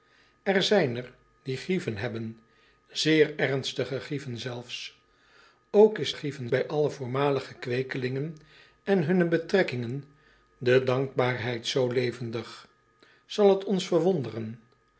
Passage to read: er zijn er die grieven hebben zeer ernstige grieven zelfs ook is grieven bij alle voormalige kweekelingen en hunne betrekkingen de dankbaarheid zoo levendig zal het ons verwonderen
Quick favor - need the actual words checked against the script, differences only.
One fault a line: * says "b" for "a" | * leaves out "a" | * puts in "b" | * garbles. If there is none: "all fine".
all fine